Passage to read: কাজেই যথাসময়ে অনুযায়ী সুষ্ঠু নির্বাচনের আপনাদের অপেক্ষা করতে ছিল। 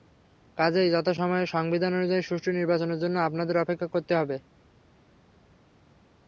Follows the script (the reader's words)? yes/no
no